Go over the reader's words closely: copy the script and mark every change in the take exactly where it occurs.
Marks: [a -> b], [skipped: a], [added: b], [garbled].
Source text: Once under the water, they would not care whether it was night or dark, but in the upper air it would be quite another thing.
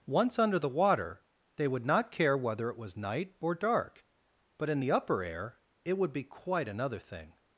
Once under the water, they would not care whether it was night or dark, but in the upper air it would be quite another thing.